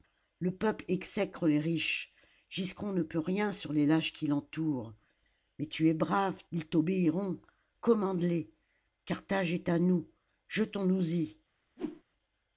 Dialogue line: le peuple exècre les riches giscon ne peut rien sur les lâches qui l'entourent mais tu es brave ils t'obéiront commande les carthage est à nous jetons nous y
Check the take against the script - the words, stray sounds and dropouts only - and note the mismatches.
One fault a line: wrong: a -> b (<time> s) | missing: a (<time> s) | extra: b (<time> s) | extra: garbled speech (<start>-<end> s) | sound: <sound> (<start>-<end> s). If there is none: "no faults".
sound: whoosh (11.8-12.0 s)